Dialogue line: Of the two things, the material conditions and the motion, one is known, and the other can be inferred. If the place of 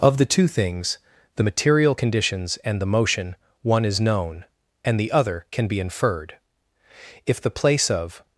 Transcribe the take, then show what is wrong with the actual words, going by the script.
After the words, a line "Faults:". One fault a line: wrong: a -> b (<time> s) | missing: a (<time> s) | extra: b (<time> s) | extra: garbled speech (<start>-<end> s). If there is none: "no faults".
Of the two things, the material conditions and the motion, one is known, and the other can be inferred. If the place of
Faults:
no faults